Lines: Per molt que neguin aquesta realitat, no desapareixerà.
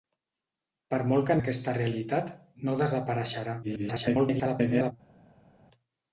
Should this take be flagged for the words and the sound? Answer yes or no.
yes